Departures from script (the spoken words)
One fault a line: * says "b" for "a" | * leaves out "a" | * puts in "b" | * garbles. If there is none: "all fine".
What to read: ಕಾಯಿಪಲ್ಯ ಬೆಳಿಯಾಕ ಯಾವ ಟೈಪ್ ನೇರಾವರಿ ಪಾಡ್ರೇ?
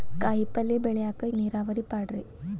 * leaves out "ಯಾವ ಟೈಪ್"